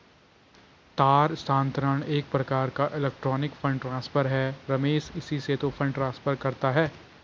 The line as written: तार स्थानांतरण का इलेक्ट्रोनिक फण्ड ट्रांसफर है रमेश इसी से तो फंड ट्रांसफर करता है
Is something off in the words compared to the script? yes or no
yes